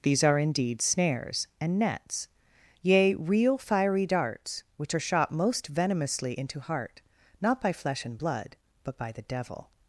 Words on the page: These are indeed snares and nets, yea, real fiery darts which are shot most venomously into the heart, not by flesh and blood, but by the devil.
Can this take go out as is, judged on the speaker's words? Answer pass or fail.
fail